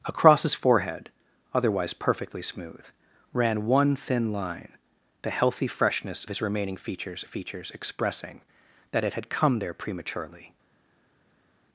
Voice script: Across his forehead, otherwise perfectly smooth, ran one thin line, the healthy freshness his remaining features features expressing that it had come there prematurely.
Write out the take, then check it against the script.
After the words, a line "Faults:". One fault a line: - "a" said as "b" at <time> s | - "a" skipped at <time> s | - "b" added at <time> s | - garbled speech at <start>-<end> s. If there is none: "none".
Across his forehead, otherwise perfectly smooth, ran one thin line, the healthy freshness his remaining features features expressing that it had come there prematurely.
Faults:
none